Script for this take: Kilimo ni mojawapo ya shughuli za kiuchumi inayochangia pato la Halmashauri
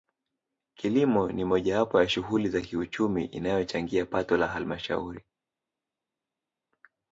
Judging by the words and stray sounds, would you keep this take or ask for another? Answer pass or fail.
pass